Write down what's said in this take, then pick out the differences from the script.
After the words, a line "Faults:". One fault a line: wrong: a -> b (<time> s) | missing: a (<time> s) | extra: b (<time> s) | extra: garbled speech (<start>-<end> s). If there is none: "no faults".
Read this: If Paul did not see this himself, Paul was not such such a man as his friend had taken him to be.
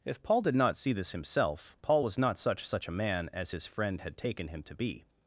If Paul did not see this himself, Paul was not such such a man as his friend had taken him to be.
Faults:
no faults